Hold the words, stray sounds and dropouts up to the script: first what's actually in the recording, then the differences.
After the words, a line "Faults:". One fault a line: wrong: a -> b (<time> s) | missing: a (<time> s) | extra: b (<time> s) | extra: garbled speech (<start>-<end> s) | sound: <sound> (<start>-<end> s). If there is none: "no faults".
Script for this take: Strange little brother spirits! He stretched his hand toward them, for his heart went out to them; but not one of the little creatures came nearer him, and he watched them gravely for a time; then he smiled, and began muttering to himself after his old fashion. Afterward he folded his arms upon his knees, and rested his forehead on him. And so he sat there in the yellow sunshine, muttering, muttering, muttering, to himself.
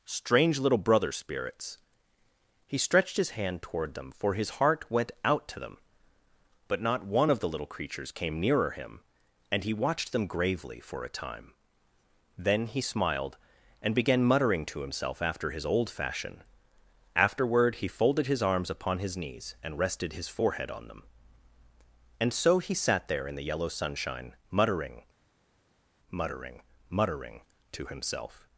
Strange little brother spirits! He stretched his hand toward them, for his heart went out to them; but not one of the little creatures came nearer him, and he watched them gravely for a time; then he smiled, and began muttering to himself after his old fashion. Afterward he folded his arms upon his knees, and rested his forehead on them. And so he sat there in the yellow sunshine, muttering, muttering, muttering, to himself.
Faults:
wrong: him -> them (20.9 s)